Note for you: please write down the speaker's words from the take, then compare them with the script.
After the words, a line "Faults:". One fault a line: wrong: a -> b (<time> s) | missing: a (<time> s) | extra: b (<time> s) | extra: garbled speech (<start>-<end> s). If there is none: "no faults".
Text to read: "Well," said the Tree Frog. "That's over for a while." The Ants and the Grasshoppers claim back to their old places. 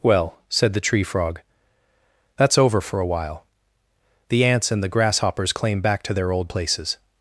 "Well," said the Tree Frog. "That's over for a while." The Ants and the Grasshoppers claim back to their old places.
Faults:
no faults